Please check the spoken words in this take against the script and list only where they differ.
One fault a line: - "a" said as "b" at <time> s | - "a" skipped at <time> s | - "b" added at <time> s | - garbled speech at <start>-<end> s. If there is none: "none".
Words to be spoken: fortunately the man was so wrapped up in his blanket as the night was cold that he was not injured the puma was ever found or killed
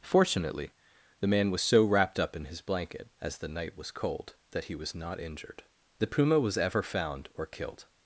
none